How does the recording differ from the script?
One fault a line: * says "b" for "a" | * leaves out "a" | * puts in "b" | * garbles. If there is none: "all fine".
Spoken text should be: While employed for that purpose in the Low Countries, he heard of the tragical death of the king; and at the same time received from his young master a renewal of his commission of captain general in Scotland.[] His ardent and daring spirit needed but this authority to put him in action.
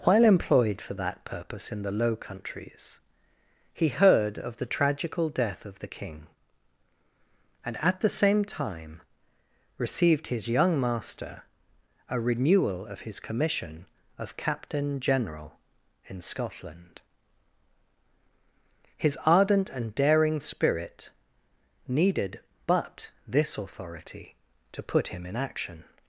* leaves out "from"